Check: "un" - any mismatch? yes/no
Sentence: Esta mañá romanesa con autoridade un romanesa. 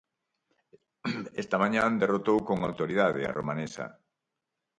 yes